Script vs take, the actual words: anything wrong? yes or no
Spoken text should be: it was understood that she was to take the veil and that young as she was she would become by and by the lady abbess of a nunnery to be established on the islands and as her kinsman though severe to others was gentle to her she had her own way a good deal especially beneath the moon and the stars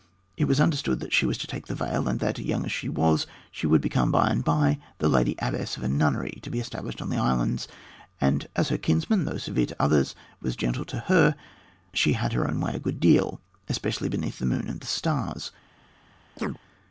no